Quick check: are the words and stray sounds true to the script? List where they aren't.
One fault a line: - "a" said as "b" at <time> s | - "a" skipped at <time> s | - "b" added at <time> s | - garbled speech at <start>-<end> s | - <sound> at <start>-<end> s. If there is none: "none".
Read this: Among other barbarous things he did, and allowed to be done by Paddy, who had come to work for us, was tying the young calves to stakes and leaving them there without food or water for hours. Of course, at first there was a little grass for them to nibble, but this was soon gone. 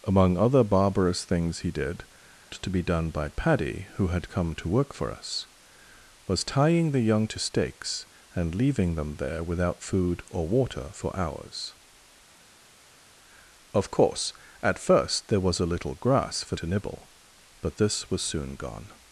- "and allowed" skipped at 2.0 s
- "calves" skipped at 7.3 s
- "them" skipped at 16.6 s